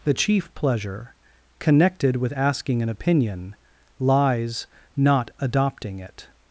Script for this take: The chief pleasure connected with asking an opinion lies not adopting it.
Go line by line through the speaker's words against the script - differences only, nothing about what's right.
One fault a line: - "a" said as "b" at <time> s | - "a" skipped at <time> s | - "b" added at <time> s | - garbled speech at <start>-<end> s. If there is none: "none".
none